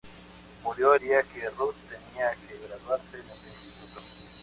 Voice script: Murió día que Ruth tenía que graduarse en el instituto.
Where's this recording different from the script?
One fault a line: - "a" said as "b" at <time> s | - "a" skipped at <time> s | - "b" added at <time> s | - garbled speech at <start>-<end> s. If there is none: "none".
none